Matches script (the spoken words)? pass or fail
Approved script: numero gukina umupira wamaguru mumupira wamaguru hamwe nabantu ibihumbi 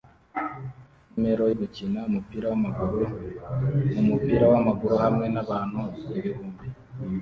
pass